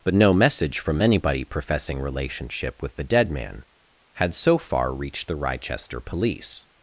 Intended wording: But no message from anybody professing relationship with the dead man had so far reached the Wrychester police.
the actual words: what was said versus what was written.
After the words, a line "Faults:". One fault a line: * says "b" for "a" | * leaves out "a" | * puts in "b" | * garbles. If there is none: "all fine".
But no message from anybody professing relationship with the dead man had so far reached the Wrychester police.
Faults:
all fine